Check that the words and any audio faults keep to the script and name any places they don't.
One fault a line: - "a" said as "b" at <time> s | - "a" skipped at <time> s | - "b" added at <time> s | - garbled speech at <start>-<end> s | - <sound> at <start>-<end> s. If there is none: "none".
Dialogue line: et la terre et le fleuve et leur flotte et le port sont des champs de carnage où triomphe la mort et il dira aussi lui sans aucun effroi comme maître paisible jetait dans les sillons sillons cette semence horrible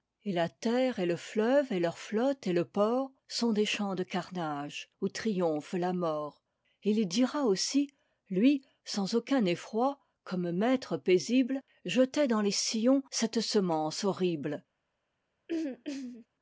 - "sillons" skipped at 13.0 s
- throat clearing at 15.5-16.3 s